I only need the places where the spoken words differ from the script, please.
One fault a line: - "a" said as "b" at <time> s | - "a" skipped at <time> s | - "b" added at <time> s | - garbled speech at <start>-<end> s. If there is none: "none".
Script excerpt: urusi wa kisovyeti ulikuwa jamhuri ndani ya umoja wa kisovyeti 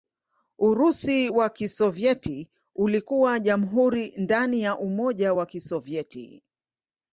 none